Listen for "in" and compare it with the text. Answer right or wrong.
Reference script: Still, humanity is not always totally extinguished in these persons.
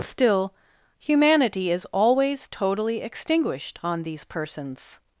wrong